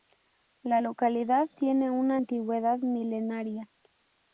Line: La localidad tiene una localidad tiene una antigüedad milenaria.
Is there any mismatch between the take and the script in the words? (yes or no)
yes